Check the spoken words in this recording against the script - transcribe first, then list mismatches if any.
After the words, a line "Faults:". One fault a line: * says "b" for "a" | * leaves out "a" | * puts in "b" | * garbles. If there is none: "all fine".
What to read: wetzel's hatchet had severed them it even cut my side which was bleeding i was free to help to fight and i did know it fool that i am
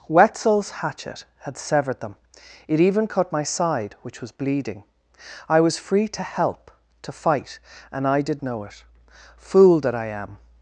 wetzel's hatchet had severed them it even cut my side which was bleeding i was free to help to fight and i did know it fool that i am
Faults:
all fine